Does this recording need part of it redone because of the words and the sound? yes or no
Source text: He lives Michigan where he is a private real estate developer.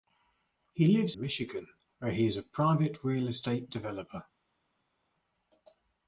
no